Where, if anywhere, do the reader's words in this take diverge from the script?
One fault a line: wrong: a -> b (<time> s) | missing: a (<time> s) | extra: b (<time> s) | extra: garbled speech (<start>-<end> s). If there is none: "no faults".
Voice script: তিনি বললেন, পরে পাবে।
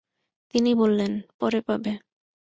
no faults